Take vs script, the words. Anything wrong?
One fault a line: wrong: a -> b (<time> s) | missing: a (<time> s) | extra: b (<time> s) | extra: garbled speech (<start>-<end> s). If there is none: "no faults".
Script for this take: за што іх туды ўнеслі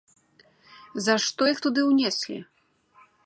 no faults